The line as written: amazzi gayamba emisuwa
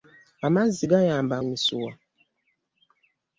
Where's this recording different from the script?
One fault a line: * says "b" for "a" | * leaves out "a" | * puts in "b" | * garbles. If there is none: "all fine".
all fine